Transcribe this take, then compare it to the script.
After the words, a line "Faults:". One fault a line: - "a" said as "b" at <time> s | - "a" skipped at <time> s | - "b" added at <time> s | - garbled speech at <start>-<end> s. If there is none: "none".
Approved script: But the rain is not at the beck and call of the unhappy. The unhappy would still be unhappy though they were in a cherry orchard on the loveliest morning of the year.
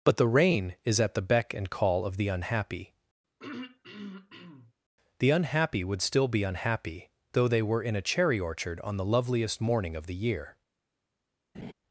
But the rain is at the beck and call of the unhappy. The unhappy would still be unhappy though they were in a cherry orchard on the loveliest morning of the year.
Faults:
- "not" skipped at 1.0 s